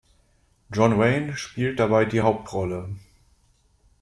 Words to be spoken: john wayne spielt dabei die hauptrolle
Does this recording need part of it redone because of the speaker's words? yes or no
no